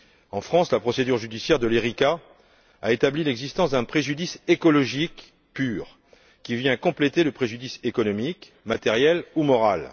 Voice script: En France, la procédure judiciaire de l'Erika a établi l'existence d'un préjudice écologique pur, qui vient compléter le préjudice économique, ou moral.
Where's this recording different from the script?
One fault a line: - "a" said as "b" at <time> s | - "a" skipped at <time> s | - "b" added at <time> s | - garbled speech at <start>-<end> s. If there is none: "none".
- "matériel" added at 8.7 s